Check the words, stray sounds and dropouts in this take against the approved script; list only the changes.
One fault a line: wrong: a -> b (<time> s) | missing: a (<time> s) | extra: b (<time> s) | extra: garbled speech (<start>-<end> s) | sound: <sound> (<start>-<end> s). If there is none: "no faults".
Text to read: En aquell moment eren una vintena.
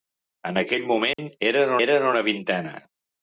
sound: dropout (1.1-1.2 s)
extra: eren (1.8 s)